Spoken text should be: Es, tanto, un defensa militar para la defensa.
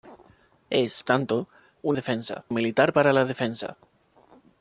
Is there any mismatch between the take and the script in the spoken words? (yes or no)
no